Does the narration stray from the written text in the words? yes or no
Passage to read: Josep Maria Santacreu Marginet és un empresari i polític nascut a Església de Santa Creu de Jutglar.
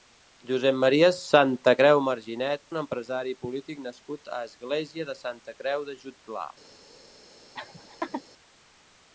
yes